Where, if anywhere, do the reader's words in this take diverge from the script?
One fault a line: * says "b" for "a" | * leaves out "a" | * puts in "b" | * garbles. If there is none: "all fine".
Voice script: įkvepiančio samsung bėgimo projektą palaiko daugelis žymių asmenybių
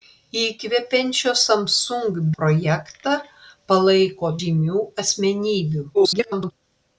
* leaves out "bėgimo"
* leaves out "daugelis"
* garbles